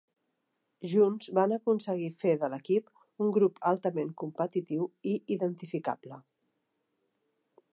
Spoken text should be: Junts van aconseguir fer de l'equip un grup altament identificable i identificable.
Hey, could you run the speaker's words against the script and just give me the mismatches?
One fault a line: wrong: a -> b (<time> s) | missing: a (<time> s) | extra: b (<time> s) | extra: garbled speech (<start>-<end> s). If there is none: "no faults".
wrong: identificable -> competitiu (4.2 s)